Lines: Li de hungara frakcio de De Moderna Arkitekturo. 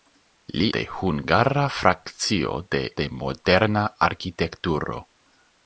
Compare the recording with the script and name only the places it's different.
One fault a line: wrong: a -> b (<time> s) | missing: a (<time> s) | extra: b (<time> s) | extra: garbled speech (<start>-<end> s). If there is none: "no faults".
no faults